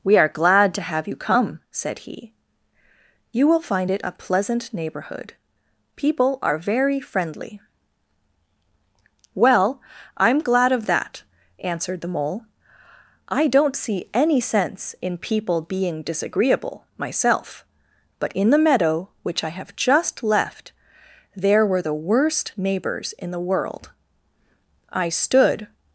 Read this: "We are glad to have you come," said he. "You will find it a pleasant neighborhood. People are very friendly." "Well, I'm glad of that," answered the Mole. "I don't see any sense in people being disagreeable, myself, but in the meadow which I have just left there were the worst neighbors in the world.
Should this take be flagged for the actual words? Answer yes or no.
yes